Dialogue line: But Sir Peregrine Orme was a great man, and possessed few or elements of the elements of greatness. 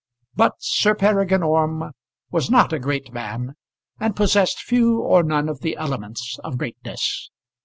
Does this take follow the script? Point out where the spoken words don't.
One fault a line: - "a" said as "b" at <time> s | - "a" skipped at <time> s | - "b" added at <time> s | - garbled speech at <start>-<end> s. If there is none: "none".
- "not" added at 2.5 s
- "elements" said as "none" at 5.2 s